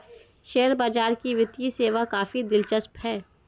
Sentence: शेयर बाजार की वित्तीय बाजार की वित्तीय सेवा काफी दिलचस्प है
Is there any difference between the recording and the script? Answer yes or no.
yes